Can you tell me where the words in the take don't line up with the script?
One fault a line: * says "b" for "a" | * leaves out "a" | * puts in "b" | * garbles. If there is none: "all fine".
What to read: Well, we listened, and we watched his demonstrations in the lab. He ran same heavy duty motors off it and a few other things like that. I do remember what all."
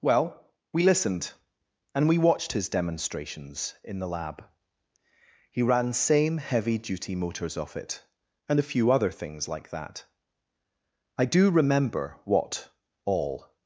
all fine